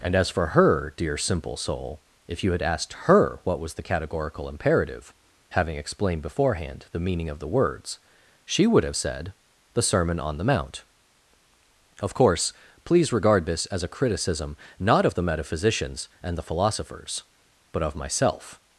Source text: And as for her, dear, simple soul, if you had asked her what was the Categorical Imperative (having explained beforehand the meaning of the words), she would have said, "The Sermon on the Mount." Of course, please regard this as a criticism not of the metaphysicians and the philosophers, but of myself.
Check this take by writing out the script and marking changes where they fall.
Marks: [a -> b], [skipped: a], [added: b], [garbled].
And as for her, dear, simple soul, if you had asked her what was the Categorical Imperative (having explained beforehand the meaning of the words), she would have said, "The Sermon on the Mount." Of course, please regard this as a criticism not of the metaphysicians and the philosophers, but of myself.